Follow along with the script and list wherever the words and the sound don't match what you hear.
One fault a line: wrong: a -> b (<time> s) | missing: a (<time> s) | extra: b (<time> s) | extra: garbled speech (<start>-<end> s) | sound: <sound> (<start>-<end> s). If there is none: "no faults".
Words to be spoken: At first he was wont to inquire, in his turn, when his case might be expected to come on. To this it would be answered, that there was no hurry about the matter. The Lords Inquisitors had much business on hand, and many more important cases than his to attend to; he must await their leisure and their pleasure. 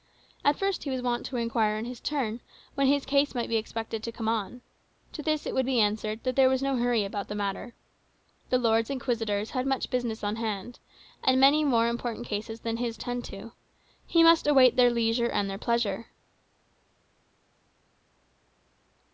missing: to (13.0 s)